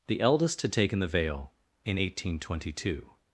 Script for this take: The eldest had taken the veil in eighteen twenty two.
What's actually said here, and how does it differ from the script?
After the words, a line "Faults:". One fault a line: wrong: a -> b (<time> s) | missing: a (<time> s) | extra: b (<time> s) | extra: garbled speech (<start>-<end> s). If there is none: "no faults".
The eldest had taken the veil in eighteen twenty two.
Faults:
no faults